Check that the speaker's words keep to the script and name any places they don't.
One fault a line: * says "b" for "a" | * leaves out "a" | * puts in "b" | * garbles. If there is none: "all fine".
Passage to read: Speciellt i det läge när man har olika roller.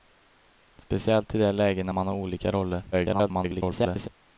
* garbles